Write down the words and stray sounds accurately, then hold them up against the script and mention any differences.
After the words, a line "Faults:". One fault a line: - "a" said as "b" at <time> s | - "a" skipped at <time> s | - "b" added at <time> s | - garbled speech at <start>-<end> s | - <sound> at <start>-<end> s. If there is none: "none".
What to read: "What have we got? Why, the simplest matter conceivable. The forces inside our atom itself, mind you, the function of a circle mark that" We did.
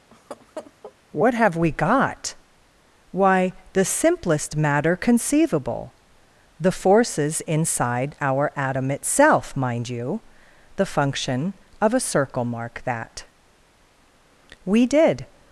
"What have we got? Why, the simplest matter conceivable. The forces inside our atom itself, mind you, the function of a circle mark that" We did.
Faults:
- laugh at 0.1-0.9 s